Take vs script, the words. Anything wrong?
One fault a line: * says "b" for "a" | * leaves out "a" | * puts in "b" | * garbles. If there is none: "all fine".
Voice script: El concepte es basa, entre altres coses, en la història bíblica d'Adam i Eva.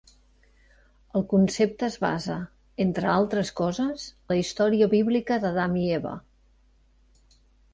* leaves out "en"